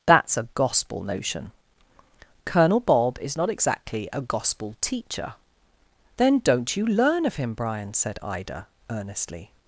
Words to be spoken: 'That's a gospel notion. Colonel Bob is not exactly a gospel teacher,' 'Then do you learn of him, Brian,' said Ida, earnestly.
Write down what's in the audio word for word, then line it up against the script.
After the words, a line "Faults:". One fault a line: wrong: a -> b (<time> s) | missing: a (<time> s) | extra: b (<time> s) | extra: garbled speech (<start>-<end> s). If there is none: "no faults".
'That's a gospel notion. Colonel Bob is not exactly a gospel teacher,' 'Then don't you learn of him, Brian,' said Ida, earnestly.
Faults:
wrong: do -> don't (6.4 s)